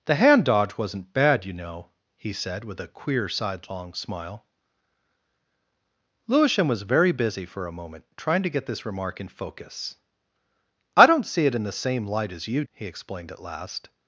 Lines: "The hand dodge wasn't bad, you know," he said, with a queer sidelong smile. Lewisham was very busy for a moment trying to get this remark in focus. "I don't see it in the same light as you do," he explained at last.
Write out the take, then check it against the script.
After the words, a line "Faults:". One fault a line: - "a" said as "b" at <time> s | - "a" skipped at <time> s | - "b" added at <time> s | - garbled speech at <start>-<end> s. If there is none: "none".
"The hand dodge wasn't bad, you know," he said, with a queer sidelong smile. Lewisham was very busy for a moment trying to get this remark in focus. "I don't see it in the same light as you," he explained at last.
Faults:
- "do" skipped at 12.6 s